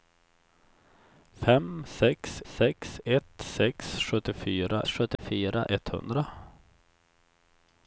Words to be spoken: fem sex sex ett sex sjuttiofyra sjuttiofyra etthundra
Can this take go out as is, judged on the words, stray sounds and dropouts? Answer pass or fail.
fail